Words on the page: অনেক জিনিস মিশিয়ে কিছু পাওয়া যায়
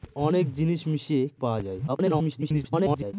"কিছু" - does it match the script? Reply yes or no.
no